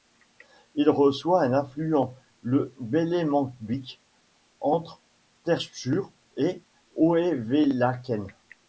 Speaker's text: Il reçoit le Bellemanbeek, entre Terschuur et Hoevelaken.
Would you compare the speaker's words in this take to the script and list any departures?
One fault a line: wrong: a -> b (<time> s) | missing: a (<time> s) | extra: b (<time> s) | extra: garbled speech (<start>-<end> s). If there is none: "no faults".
extra: un affluent (1.4 s)